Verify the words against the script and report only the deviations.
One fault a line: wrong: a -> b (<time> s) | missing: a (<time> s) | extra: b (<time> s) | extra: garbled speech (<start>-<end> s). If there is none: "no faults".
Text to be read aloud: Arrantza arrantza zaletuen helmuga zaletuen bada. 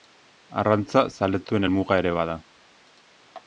missing: arrantza (1.0 s)
wrong: zaletuen -> ere (2.0 s)